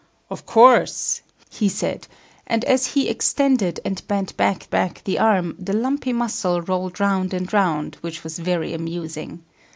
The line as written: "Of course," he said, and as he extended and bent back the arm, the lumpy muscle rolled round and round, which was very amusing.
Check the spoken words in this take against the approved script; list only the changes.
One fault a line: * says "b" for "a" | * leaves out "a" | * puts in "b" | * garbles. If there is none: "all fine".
* puts in "back"